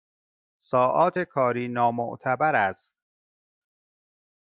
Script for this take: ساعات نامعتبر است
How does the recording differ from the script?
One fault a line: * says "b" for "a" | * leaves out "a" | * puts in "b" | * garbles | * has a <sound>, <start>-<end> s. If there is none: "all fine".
* puts in "کاری"